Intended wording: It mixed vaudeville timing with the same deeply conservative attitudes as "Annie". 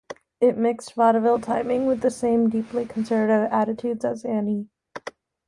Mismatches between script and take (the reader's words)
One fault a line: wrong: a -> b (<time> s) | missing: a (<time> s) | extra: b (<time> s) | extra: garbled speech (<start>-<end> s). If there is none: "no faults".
no faults